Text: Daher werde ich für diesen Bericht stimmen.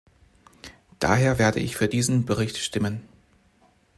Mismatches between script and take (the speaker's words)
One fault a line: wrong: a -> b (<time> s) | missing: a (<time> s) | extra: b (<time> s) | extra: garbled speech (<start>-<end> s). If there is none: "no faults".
no faults